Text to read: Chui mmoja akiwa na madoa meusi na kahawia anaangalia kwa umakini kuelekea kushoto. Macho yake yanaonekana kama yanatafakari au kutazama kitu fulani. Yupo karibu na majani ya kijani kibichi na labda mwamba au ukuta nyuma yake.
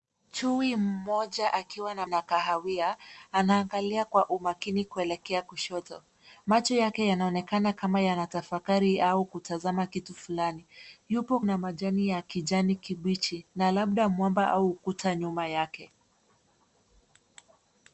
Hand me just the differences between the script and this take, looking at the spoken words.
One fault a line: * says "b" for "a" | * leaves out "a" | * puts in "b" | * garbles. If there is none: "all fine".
* leaves out "madoa meusi"
* leaves out "karibu"